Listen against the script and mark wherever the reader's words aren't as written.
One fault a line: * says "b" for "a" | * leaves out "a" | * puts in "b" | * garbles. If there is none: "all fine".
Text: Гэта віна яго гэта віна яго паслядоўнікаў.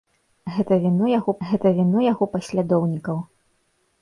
all fine